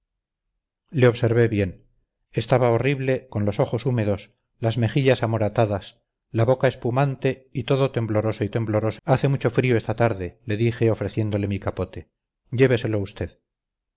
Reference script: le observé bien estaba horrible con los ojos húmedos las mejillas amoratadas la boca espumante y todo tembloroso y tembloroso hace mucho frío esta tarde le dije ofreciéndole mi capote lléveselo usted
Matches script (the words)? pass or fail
pass